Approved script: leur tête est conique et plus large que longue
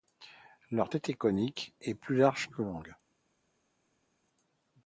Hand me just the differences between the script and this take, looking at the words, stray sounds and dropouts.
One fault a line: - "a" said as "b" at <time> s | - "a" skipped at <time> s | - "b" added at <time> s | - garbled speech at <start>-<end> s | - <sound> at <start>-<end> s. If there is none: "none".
none